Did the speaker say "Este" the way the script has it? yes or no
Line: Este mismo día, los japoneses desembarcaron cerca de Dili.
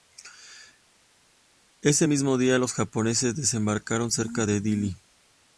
no